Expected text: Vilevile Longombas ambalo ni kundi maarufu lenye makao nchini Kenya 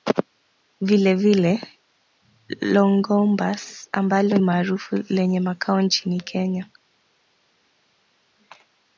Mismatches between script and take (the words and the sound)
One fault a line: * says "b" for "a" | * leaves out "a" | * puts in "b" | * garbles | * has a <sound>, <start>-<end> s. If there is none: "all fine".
* leaves out "ni kundi"